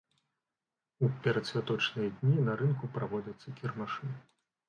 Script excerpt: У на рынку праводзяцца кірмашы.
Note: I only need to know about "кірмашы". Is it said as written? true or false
true